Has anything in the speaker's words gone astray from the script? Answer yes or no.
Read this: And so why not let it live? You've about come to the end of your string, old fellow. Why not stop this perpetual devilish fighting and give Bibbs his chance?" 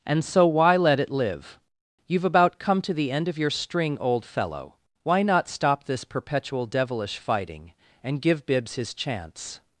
yes